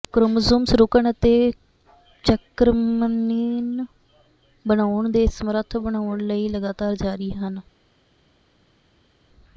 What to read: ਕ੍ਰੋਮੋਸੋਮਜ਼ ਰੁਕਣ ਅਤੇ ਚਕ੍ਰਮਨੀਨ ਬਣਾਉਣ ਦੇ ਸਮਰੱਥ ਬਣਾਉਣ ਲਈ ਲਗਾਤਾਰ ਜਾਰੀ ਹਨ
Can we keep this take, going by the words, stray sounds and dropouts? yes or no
yes